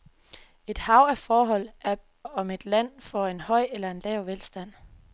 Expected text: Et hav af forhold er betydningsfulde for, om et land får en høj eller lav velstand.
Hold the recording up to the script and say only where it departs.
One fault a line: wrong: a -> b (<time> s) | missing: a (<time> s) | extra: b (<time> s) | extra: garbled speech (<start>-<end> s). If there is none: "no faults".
missing: betydningsfulde for (1.9 s)